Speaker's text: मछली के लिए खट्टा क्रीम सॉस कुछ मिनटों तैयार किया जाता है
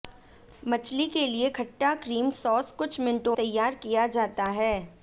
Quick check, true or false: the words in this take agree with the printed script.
true